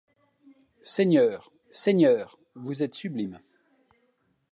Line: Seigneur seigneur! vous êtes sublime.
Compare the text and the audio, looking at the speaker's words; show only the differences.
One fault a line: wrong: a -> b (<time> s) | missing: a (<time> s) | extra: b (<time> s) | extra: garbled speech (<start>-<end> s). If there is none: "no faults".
no faults